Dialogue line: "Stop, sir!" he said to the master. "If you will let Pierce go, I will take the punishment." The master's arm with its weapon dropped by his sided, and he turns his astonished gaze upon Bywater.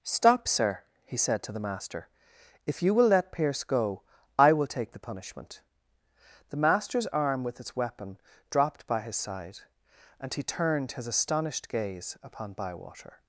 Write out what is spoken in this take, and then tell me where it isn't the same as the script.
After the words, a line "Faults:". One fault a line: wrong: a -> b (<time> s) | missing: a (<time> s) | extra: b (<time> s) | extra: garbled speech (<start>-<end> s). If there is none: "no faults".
"Stop, sir!" he said to the master. "If you will let Pierce go, I will take the punishment." The master's arm with its weapon dropped by his side, and he turned his astonished gaze upon Bywater.
Faults:
wrong: sided -> side (9.2 s)
wrong: turns -> turned (10.4 s)